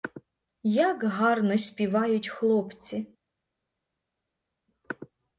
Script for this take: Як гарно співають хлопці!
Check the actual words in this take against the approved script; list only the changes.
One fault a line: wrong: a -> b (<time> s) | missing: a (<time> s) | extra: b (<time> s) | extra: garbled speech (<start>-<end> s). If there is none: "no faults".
no faults